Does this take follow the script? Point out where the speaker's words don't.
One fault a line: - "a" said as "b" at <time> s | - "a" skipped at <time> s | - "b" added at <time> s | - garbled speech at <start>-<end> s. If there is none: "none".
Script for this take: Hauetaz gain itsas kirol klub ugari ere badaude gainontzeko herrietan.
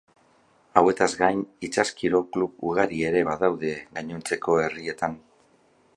none